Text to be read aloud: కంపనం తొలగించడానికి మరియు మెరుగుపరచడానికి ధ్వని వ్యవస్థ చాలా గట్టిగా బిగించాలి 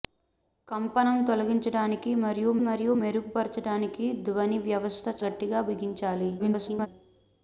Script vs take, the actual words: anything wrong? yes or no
yes